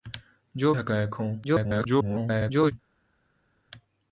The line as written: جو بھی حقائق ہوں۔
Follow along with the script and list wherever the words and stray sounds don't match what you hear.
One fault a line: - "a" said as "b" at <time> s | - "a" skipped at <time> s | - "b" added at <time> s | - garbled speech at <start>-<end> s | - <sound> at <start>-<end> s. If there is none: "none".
- "بھی" skipped at 0.7 s
- garbled speech at 1.4-2.7 s